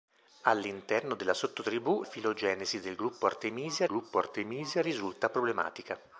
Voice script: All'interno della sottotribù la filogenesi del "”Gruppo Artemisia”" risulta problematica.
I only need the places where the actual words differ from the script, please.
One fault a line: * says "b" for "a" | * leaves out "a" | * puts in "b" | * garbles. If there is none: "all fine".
* leaves out "la"
* puts in "gruppo Artemisia"